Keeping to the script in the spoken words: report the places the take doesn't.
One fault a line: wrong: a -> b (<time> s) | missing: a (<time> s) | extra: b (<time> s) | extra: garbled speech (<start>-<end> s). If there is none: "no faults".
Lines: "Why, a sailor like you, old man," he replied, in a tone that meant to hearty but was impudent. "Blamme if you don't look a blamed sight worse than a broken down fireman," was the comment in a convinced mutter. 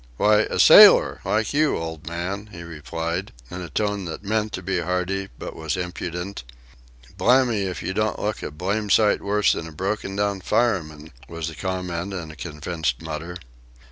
extra: be (4.6 s)